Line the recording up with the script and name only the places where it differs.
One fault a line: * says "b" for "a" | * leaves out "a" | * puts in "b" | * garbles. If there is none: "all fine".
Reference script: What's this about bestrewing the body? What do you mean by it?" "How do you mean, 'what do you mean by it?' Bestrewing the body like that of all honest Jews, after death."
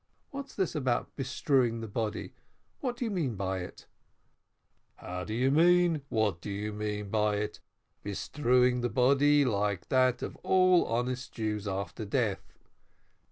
all fine